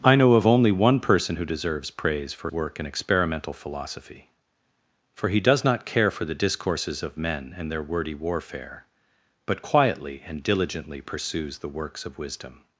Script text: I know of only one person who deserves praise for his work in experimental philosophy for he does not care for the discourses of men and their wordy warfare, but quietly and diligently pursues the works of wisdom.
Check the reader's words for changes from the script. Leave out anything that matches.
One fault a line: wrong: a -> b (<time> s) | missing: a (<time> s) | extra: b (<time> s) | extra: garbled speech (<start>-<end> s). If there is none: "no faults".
missing: his (2.5 s)